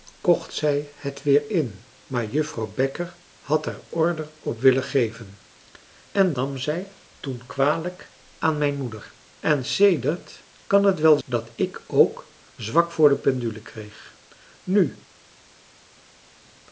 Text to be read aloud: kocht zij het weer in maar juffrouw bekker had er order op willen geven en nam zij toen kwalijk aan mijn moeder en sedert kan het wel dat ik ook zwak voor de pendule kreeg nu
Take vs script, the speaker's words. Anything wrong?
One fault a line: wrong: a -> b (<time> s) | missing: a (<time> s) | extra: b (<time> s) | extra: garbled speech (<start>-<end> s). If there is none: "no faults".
no faults